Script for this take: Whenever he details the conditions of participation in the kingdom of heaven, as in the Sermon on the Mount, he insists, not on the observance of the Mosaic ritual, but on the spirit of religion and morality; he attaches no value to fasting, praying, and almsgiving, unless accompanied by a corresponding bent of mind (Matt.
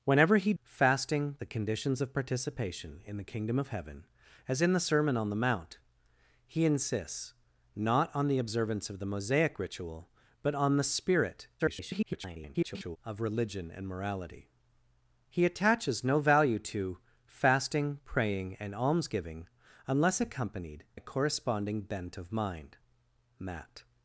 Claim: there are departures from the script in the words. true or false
true